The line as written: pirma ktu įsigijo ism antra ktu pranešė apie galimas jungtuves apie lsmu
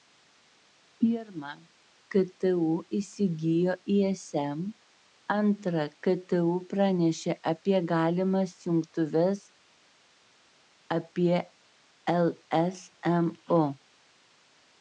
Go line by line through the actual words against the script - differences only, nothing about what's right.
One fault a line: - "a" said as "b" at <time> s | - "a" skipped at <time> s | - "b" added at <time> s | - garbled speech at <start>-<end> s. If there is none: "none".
none